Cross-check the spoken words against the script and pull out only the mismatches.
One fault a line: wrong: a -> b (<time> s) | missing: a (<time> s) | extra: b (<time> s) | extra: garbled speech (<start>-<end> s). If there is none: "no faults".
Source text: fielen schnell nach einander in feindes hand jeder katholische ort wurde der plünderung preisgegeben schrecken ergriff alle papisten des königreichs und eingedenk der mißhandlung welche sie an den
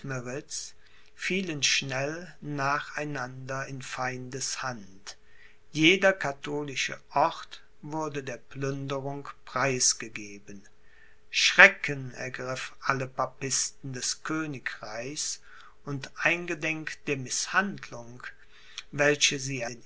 missing: an (19.6 s)